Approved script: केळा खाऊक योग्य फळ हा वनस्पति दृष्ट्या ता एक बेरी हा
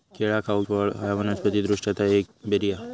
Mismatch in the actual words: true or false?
true